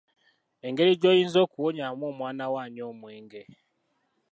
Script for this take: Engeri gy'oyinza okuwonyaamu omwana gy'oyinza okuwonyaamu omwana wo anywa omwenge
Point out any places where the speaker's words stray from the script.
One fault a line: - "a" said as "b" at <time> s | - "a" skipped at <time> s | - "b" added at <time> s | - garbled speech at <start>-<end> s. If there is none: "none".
- "gy'oyinza okuwonyaamu omwana" skipped at 2.4 s